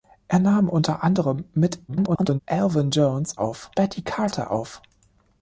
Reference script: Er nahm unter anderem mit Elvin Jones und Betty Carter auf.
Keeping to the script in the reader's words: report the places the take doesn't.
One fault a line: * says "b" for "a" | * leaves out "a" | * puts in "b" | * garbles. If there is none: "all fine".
* garbles
* says "auf" for "und"